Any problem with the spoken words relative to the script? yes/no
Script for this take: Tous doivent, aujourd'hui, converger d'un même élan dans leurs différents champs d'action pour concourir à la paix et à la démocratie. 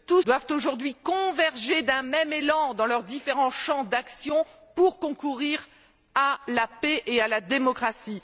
no